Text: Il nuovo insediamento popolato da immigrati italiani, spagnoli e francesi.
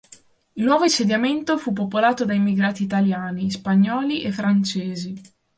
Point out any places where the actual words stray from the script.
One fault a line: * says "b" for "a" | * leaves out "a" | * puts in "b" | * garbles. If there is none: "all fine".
* puts in "fu"